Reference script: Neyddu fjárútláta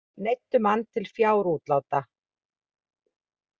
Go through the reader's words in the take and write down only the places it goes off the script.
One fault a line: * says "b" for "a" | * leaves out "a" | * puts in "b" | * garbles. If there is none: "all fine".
* puts in "mann til"